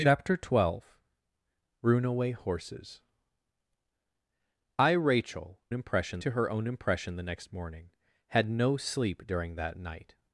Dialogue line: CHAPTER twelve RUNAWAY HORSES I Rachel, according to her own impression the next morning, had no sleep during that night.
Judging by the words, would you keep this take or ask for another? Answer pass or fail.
fail